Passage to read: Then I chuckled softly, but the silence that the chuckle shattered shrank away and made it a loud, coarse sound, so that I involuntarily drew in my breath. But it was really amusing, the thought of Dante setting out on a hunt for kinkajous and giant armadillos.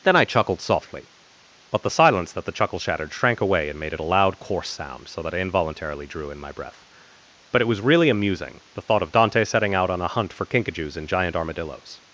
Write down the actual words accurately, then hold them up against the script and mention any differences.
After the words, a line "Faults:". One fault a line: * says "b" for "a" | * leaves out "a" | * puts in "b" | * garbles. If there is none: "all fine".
Then I chuckled softly, but the silence that the chuckle shattered shrank away and made it a loud, coarse sound, so that I involuntarily drew in my breath. But it was really amusing, the thought of Dante setting out on a hunt for kinkajous and giant armadillos.
Faults:
all fine